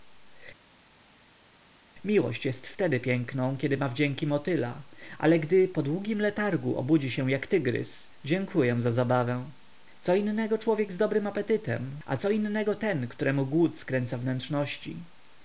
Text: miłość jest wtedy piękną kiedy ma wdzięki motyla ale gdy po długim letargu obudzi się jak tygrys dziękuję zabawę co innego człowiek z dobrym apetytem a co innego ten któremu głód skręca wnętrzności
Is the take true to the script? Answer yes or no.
no